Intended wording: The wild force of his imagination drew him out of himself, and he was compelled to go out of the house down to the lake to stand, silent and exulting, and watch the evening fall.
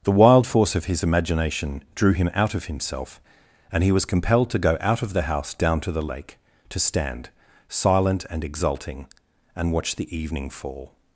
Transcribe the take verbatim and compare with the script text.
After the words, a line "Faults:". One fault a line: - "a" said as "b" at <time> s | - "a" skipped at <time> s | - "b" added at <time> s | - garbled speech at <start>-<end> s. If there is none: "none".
The wild force of his imagination drew him out of himself, and he was compelled to go out of the house down to the lake to stand, silent and exulting, and watch the evening fall.
Faults:
none